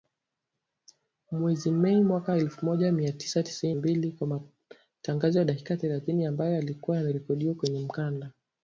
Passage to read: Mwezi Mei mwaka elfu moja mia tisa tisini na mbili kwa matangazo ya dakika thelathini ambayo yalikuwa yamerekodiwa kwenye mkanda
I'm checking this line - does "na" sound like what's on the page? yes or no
no